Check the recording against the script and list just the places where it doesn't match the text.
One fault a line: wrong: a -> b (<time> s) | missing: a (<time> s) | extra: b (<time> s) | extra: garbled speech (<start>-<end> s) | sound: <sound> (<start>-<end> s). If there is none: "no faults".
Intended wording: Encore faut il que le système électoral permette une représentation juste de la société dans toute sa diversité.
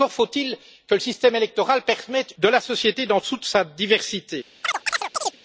missing: une représentation juste (2.3 s)
sound: chirp (4.6-5.4 s)